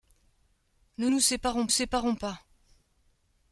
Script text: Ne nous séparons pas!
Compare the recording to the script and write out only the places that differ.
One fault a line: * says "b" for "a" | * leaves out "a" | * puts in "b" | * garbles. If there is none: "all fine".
* puts in "séparons"